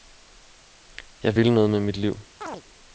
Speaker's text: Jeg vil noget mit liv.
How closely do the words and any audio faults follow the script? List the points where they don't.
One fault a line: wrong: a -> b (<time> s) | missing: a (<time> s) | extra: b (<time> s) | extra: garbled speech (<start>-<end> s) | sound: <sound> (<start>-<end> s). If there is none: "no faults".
extra: med (1.7 s)
sound: chirp (2.4-2.6 s)